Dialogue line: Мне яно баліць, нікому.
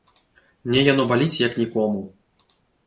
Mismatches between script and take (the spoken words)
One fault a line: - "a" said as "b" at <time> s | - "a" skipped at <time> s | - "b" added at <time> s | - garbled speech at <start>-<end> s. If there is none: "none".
- "як" added at 1.5 s